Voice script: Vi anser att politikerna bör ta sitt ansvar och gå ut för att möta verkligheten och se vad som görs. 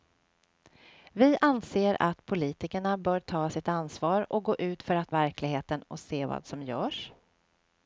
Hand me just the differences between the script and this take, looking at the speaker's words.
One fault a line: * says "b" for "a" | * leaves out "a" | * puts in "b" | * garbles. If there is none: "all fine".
* leaves out "möta"